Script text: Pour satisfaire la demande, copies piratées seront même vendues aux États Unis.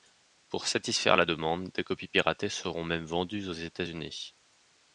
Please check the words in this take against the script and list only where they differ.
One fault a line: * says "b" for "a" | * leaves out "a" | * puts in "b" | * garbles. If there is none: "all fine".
* puts in "des"